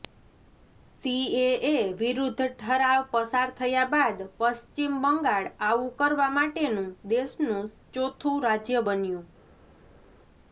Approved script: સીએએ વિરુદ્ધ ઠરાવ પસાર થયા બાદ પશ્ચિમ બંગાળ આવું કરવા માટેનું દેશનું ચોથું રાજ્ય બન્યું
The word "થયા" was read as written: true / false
true